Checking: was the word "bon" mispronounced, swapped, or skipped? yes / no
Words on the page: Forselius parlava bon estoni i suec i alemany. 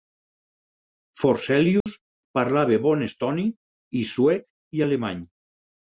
no